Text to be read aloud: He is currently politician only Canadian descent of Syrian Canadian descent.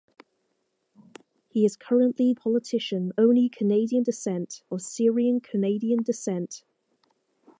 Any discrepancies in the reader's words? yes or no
no